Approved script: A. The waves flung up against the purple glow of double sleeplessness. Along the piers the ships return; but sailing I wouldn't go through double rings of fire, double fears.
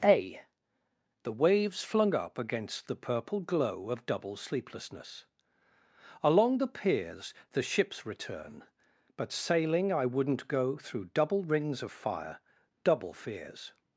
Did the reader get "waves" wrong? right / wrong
right